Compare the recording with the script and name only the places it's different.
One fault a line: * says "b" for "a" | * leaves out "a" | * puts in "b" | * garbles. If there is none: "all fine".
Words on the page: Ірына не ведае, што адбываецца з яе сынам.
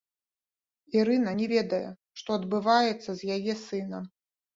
all fine